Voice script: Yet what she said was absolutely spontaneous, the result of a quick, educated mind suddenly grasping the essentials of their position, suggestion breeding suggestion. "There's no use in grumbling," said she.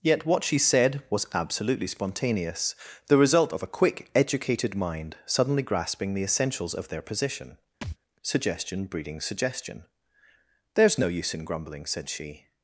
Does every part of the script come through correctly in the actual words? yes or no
yes